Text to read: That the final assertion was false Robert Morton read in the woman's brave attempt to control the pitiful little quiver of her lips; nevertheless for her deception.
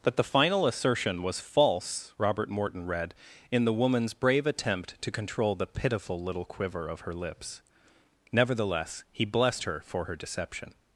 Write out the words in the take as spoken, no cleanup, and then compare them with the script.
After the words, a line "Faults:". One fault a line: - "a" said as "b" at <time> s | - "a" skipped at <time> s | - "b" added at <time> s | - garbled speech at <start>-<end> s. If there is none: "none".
That the final assertion was false Robert Morton read in the woman's brave attempt to control the pitiful little quiver of her lips; nevertheless he blessed her for her deception.
Faults:
- "he blessed her" added at 9.1 s